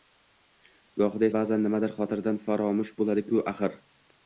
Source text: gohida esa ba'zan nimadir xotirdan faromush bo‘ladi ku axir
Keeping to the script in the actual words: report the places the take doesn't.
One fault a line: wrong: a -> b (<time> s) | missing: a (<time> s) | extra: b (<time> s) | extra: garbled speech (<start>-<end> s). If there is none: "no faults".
missing: esa (1.3 s)